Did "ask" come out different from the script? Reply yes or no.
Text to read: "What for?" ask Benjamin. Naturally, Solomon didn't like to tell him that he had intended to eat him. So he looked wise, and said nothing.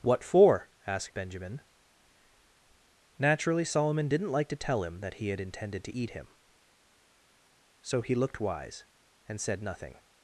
yes